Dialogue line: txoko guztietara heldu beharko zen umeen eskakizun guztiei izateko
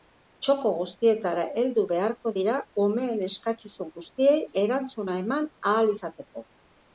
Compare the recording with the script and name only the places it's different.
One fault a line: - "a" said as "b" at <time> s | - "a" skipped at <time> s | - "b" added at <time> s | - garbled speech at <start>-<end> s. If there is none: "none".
- "zen" said as "dira" at 2.3 s
- "erantzuna eman ahal" added at 4.6 s